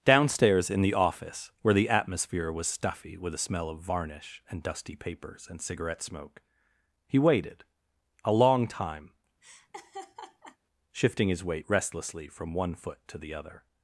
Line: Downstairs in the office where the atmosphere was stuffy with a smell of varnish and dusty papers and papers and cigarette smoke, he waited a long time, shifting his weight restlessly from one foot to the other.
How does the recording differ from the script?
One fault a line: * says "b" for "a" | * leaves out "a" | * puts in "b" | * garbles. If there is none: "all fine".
* leaves out "papers and"